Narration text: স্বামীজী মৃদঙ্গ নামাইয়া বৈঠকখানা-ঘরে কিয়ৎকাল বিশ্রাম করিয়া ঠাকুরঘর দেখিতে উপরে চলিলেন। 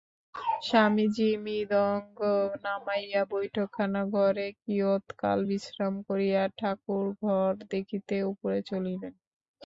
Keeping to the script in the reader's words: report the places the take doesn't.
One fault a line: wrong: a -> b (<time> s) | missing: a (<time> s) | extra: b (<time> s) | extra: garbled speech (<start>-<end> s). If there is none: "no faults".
no faults